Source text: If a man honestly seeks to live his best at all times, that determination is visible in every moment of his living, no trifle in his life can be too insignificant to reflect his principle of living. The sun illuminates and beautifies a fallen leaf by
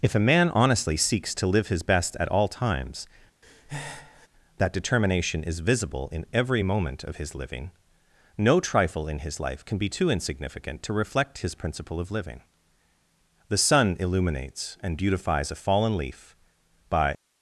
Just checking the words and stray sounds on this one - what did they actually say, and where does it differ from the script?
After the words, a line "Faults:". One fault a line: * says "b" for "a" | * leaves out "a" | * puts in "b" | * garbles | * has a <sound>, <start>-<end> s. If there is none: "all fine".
If a man honestly seeks to live his best at all times, that determination is visible in every moment of his living, no trifle in his life can be too insignificant to reflect his principle of living. The sun illuminates and beautifies a fallen leaf by
Faults:
* has a breath, 3.4-4.3 s